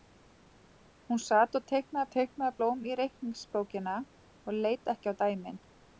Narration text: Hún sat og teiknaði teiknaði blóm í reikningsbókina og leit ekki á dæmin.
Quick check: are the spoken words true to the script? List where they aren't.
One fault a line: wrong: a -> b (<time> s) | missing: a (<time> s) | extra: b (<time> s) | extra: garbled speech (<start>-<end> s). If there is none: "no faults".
no faults